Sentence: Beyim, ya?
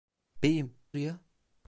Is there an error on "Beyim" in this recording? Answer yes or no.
no